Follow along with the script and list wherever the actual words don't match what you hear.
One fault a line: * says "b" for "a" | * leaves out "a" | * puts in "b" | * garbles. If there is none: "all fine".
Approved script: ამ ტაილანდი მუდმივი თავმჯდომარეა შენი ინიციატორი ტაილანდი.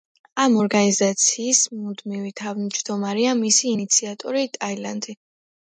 * says "ორგანიზაციის" for "ტაილანდი"
* says "მისი" for "შენი"